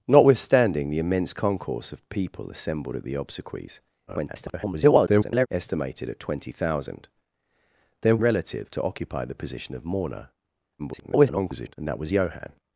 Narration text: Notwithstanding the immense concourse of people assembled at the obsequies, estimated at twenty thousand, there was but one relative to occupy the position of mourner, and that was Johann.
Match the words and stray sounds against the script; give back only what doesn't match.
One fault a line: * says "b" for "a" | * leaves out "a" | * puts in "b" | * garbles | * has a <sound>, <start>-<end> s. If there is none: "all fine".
* garbles
* leaves out "was but one"
* garbles